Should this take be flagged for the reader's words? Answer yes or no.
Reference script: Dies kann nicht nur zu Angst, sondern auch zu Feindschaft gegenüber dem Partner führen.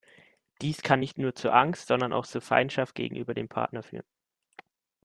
no